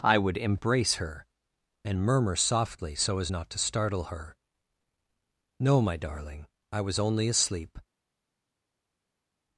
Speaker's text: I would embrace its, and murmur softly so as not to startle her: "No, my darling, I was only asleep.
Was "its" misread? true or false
true